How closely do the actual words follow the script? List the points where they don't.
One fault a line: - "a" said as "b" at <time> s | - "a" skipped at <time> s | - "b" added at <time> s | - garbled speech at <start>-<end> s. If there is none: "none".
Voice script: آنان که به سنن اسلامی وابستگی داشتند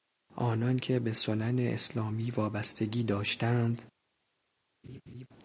none